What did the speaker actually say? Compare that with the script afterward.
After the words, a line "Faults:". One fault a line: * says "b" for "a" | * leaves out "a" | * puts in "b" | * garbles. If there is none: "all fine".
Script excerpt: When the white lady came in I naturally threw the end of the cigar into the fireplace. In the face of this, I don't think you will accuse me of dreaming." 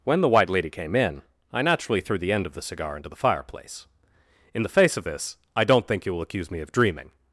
When the white lady came in I naturally threw the end of the cigar into the fireplace. In the face of this, I don't think you will accuse me of dreaming."
Faults:
all fine